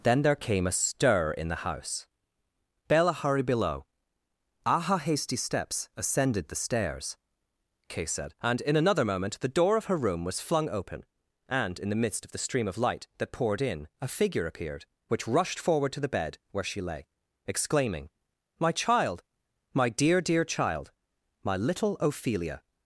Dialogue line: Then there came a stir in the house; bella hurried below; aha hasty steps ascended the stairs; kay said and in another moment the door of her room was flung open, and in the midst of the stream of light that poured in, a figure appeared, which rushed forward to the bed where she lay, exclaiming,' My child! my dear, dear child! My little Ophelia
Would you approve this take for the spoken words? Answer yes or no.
yes